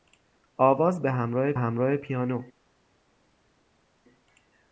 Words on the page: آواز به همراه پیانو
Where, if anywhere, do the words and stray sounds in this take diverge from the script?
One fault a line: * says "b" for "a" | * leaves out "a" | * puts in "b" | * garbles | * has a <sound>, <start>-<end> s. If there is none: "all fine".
* puts in "همراه"